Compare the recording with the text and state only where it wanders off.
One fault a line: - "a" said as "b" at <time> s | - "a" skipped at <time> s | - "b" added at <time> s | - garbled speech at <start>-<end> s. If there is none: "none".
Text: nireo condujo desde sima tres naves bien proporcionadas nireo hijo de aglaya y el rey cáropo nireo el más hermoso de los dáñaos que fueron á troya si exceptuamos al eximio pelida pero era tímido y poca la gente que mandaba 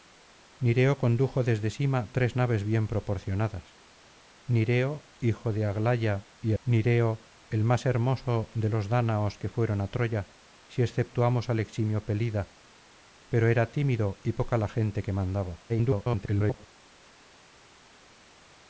- "el rey cáropo" skipped at 6.5 s
- garbled speech at 15.7-16.7 s